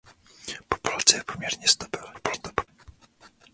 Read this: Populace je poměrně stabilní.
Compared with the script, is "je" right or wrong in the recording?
right